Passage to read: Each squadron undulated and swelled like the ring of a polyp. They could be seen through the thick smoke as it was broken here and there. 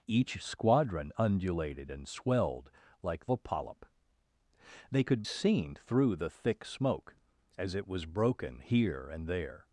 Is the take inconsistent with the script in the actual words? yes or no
yes